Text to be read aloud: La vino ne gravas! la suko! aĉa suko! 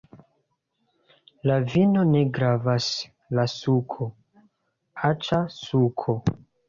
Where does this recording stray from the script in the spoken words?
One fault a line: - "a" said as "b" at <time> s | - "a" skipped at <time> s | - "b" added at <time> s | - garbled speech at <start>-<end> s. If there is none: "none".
none